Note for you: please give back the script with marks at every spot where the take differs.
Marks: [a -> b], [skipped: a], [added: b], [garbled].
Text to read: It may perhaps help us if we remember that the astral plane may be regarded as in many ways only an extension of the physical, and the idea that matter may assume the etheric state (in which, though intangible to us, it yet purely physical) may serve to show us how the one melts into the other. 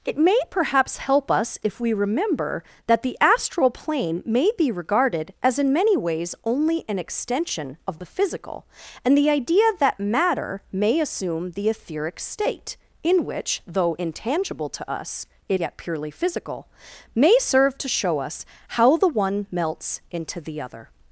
It may perhaps help us if we remember that the astral plane may be regarded as in many ways only an extension of the physical, and the idea that matter may assume the etheric state (in which, though intangible to us, it yet purely physical) may serve to show us how the one melts into the other.